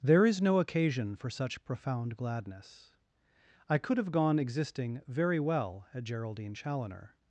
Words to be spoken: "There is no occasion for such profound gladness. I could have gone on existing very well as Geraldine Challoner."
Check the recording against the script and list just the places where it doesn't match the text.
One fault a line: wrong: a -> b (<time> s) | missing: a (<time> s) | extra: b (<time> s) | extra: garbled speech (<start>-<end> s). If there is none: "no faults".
missing: on (4.4 s)
wrong: as -> at (5.9 s)